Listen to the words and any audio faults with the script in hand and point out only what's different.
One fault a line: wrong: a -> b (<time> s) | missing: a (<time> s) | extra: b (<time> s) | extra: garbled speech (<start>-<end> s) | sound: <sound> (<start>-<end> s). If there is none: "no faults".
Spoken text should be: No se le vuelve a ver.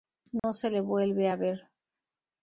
sound: dropout (0.4-0.4 s)